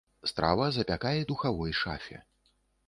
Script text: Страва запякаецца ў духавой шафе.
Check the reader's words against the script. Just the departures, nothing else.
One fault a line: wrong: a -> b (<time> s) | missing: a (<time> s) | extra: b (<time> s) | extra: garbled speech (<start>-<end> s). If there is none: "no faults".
missing: ў (1.3 s)